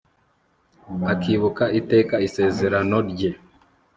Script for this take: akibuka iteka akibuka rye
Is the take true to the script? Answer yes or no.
no